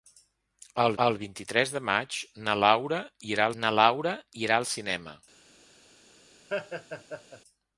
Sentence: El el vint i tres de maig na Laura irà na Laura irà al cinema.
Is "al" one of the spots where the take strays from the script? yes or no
no